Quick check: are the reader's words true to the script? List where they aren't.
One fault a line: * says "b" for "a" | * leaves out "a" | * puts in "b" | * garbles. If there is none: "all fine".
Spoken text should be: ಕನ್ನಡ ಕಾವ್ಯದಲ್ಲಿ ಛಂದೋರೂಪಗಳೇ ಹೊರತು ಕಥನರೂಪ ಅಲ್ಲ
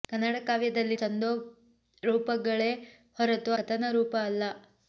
all fine